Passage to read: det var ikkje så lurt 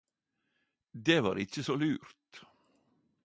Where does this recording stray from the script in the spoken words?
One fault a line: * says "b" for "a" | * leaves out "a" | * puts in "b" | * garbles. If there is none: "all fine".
all fine